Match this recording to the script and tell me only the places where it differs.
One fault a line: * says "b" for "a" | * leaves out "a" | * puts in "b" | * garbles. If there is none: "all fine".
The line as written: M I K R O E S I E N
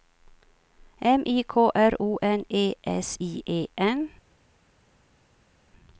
* puts in "N"